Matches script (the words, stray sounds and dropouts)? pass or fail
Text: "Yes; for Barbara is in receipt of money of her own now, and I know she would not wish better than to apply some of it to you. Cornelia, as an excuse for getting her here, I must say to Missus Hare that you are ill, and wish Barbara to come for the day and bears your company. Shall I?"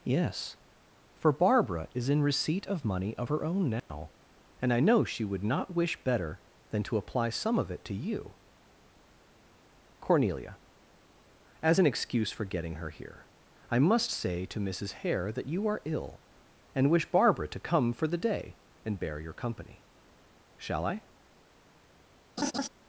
fail